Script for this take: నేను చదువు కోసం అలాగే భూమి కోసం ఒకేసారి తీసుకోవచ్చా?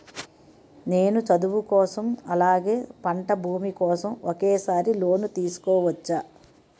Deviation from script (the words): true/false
true